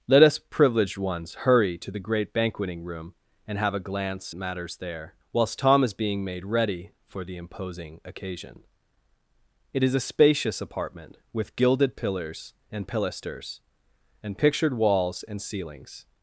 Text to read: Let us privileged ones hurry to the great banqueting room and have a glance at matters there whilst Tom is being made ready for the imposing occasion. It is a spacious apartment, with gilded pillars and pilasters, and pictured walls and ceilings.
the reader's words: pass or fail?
fail